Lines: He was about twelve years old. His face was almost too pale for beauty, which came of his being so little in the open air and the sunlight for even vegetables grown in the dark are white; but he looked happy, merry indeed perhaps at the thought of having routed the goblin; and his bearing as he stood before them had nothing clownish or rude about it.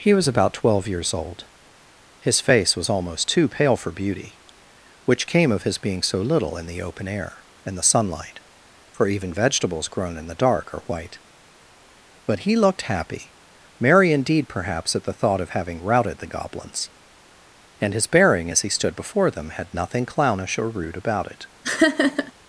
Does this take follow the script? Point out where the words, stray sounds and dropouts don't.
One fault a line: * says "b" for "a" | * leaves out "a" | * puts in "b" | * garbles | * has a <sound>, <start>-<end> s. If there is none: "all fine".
* says "goblins" for "goblin"
* has a laugh, 21.6-22.3 s